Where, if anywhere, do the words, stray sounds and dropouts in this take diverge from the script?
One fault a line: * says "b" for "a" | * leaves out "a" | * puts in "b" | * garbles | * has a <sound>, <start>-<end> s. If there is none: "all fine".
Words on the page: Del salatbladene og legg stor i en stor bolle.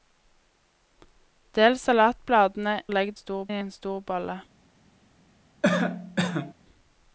* has a cough, 5.6-6.5 s